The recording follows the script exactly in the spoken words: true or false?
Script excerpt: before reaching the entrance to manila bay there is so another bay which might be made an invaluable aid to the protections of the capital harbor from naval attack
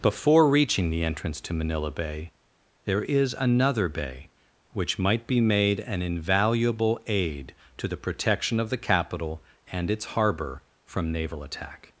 false